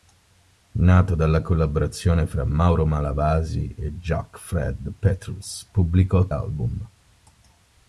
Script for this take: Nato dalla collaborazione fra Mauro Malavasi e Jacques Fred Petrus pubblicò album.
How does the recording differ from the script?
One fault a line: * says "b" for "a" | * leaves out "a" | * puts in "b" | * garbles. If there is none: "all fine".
all fine